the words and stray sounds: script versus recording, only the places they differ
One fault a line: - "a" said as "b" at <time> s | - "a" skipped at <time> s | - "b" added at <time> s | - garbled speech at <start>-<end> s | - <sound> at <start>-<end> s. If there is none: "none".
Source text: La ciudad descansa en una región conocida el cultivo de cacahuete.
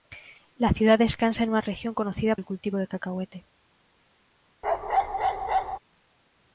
- bark at 4.6-5.8 s